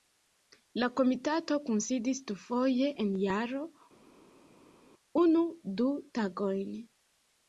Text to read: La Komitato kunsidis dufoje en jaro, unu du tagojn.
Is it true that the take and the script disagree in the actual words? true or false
false